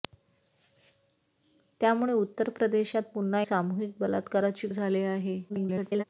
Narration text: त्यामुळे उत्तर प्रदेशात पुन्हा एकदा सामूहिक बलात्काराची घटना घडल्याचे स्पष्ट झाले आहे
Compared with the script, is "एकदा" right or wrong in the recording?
wrong